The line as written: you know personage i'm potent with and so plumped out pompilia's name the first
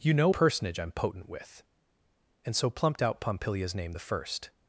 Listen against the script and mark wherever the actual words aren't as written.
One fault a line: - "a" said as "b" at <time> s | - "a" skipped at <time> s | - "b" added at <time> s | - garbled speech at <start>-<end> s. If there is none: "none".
none